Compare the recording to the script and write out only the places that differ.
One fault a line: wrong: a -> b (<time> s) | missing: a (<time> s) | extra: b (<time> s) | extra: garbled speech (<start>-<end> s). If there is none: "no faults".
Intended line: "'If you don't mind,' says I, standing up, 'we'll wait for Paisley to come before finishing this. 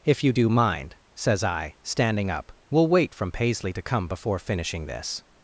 wrong: don't -> do (0.3 s)
wrong: for -> from (3.1 s)